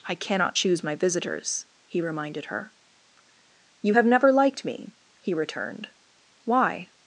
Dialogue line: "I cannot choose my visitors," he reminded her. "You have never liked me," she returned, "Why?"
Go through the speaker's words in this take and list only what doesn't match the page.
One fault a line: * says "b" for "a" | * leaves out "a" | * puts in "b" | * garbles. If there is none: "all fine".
* says "he" for "she"